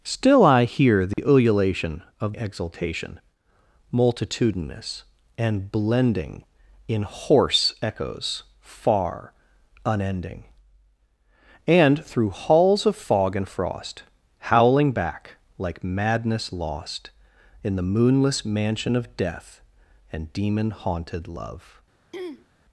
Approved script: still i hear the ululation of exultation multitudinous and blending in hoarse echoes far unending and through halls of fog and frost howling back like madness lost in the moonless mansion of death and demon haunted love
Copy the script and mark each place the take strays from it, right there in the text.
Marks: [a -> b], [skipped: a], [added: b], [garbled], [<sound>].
still i hear the [dropout] ululation of exultation multitudinous and blending in hoarse echoes far unending and through halls of fog and frost howling back like madness lost in the moonless mansion of death and demon haunted love [throat clearing]